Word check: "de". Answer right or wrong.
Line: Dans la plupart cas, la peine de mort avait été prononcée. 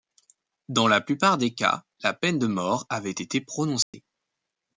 right